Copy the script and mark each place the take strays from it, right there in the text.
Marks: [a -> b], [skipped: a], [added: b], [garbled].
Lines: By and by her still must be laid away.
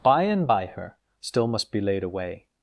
By and by her still must be laid away.